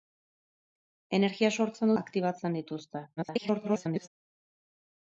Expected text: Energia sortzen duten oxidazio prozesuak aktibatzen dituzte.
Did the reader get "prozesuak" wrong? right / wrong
wrong